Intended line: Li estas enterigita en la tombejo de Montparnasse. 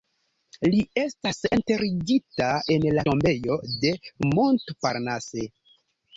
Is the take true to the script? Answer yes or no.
yes